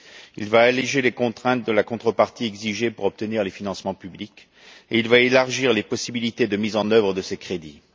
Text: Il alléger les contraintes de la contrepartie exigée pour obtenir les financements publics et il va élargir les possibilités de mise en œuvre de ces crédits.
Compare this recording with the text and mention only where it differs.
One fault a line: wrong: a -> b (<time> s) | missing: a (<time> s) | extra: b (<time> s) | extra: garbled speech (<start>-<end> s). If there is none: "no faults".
extra: va (0.5 s)